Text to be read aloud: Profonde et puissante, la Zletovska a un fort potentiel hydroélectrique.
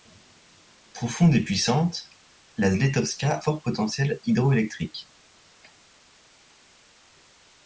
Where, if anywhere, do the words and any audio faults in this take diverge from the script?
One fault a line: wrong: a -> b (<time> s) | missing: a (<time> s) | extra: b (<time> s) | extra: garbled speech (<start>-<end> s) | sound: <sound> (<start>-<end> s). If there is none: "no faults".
missing: a un (3.4 s)